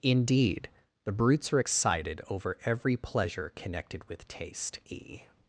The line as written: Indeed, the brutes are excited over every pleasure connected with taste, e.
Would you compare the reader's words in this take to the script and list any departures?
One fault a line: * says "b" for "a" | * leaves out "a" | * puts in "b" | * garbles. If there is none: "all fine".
all fine